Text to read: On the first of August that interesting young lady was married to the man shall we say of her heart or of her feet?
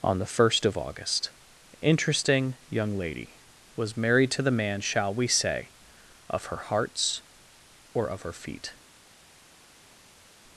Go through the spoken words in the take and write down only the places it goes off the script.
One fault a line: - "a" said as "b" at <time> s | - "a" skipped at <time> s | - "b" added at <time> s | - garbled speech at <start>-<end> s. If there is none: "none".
- "that" skipped at 1.3 s
- "heart" said as "hearts" at 6.7 s